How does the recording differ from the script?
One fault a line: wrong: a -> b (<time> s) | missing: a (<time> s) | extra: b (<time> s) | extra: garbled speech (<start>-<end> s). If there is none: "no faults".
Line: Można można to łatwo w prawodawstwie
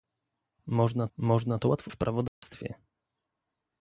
no faults